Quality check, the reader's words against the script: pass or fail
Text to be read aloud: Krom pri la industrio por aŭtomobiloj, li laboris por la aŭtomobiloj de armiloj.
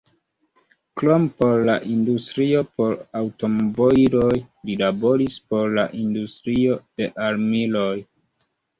fail